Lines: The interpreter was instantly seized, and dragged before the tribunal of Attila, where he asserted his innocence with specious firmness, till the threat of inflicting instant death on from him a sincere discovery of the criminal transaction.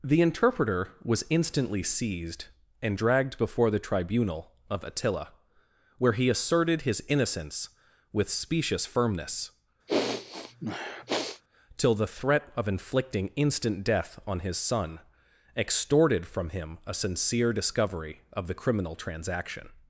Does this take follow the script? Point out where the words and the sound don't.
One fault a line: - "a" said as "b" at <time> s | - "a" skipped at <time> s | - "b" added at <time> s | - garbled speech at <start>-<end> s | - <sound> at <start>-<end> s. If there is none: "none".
- sniff at 9.9-11.4 s
- "his son extorted" added at 14.4 s